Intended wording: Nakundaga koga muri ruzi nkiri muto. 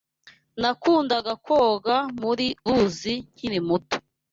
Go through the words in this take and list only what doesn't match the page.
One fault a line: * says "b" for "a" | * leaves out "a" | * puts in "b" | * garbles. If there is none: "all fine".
all fine